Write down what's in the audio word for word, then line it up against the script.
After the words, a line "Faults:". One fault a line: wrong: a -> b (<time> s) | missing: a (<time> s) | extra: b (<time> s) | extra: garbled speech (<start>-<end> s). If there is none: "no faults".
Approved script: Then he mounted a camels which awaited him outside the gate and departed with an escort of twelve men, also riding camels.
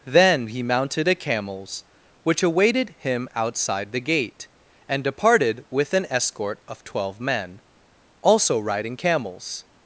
Then he mounted a camels which awaited him outside the gate and departed with an escort of twelve men, also riding camels.
Faults:
no faults